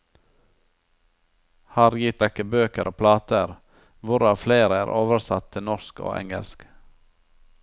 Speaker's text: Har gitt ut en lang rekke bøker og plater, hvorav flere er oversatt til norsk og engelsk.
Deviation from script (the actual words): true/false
true